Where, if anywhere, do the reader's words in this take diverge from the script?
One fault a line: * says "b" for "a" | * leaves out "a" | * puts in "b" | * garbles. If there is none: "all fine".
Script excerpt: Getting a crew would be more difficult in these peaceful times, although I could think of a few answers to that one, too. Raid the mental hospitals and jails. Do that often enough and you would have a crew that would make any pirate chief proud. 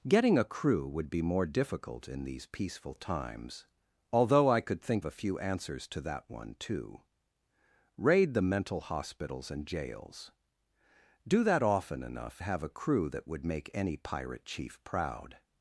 * leaves out "of"
* leaves out "and you would"